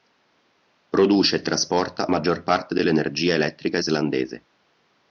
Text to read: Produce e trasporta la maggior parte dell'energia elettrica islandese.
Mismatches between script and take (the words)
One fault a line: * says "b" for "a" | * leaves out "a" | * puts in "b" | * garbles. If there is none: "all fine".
* leaves out "la"